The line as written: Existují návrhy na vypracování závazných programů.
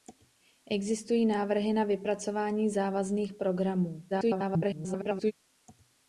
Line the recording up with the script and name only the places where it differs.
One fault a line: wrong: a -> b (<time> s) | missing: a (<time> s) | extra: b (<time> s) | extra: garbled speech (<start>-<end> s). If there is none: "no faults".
extra: garbled speech (4.1-5.3 s)